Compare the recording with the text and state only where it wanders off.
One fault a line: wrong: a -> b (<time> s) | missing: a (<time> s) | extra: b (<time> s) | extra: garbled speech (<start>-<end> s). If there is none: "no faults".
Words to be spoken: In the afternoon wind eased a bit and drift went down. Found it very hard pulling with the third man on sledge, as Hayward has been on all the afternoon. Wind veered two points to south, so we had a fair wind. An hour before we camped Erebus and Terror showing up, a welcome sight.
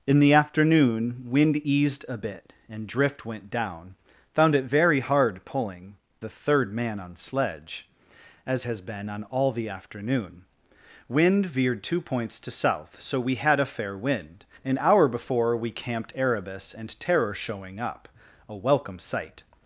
missing: with (6.0 s)
missing: Hayward (8.6 s)